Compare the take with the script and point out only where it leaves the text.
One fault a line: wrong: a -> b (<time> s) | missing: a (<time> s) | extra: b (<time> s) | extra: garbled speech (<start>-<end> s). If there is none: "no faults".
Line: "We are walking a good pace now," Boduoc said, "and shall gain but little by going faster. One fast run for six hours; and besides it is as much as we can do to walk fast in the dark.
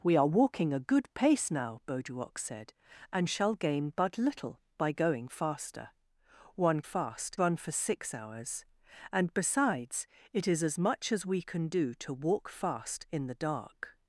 no faults